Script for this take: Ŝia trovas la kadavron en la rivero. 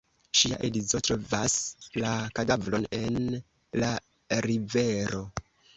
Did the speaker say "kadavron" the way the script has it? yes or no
yes